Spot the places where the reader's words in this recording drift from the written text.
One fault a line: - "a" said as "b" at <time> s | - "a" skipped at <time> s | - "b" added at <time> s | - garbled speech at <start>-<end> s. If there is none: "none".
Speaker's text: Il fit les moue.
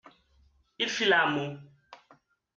- "les" said as "la" at 1.0 s